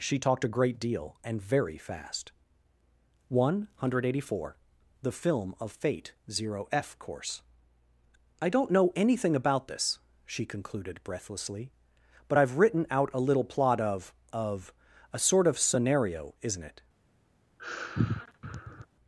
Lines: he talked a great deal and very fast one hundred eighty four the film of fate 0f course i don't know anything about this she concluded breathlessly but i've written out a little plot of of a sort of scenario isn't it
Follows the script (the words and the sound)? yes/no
no